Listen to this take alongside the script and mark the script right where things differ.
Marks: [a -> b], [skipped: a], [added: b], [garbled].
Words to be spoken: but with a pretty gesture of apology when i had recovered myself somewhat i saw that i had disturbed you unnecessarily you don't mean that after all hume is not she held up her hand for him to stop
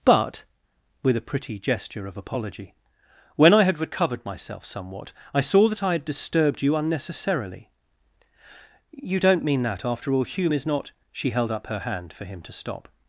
but with a pretty gesture of apology when i had recovered myself somewhat i saw that i had disturbed you unnecessarily you don't mean that after all hume is not she held up her hand for him to stop